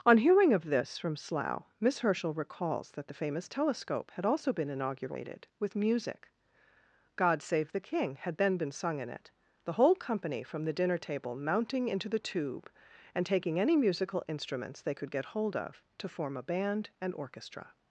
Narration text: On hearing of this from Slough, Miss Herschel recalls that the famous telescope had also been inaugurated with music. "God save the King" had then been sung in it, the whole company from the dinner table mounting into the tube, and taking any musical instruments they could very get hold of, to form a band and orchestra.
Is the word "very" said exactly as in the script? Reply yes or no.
no